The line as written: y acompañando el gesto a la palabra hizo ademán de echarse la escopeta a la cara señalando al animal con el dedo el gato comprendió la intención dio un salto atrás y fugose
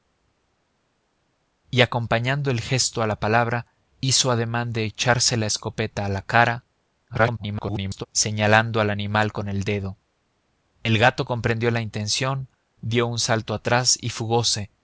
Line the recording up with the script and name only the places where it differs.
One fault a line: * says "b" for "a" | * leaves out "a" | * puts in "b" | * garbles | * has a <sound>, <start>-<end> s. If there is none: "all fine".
* garbles